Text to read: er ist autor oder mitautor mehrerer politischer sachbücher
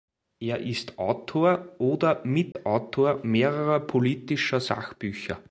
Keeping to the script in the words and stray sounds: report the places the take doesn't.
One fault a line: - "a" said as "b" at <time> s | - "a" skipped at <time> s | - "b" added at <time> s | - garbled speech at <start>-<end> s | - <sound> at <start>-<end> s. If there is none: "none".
- dropout at 2.5-2.6 s